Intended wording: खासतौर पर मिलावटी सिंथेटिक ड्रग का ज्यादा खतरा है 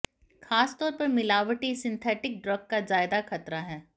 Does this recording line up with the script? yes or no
yes